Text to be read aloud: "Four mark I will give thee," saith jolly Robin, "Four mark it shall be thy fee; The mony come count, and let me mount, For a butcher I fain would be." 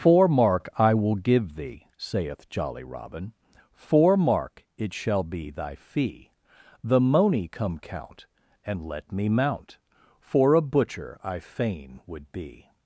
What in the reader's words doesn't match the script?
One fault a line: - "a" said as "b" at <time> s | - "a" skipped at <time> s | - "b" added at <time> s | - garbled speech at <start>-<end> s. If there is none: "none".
none